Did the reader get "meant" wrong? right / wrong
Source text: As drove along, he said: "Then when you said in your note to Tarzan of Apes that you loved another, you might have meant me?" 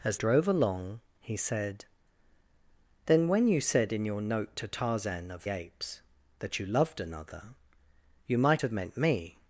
right